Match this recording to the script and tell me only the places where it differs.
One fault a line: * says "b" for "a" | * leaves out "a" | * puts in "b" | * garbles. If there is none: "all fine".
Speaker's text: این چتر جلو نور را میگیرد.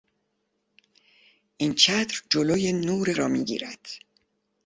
all fine